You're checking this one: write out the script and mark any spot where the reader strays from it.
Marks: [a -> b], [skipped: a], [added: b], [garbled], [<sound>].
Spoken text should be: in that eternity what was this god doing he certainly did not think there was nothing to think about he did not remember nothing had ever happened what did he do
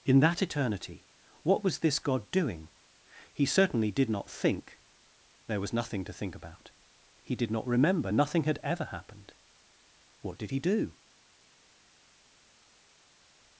in that eternity what was this god doing he certainly did not think there was nothing to think about he did not remember nothing had ever happened what did he do